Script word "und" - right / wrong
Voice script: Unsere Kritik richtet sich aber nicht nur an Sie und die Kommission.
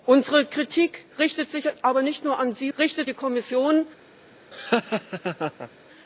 wrong